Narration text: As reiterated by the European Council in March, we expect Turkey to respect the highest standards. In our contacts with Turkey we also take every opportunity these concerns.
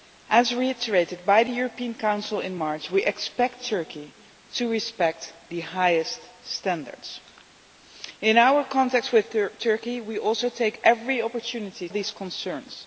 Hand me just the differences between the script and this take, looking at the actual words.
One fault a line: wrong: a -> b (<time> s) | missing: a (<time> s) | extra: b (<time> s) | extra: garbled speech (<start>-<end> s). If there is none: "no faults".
no faults